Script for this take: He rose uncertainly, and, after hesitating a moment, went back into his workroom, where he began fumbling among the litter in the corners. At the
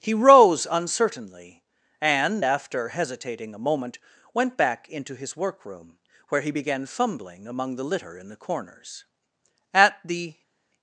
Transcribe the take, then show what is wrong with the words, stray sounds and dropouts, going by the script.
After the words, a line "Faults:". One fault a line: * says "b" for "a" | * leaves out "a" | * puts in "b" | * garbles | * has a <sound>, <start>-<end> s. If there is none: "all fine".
He rose uncertainly, and, after hesitating a moment, went back into his workroom, where he began fumbling among the litter in the corners. At the
Faults:
all fine